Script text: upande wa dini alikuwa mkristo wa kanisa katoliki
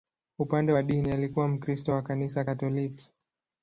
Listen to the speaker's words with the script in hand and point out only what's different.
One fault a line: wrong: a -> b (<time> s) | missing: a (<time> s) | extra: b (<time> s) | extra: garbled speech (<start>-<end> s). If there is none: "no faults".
no faults